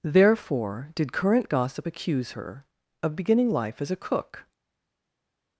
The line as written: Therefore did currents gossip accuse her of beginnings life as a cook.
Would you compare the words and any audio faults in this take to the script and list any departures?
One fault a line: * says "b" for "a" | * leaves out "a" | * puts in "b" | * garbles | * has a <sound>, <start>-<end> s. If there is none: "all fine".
* says "current" for "currents"
* says "beginning" for "beginnings"